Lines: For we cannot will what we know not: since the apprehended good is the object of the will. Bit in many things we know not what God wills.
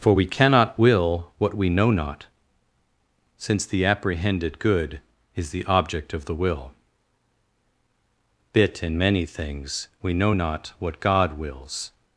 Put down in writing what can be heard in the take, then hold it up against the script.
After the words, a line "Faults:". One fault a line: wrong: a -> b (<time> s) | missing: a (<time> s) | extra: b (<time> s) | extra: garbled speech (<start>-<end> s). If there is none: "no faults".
For we cannot will what we know not: since the apprehended good is the object of the will. Bit in many things we know not what God wills.
Faults:
no faults